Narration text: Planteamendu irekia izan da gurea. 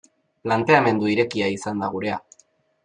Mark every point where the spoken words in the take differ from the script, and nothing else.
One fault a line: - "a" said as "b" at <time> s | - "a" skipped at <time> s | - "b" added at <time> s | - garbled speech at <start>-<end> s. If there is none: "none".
none